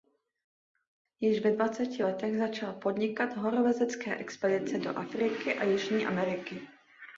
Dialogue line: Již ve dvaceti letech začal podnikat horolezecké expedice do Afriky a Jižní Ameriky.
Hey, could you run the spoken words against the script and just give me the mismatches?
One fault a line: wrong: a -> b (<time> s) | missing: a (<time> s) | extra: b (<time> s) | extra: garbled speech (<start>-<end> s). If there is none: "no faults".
no faults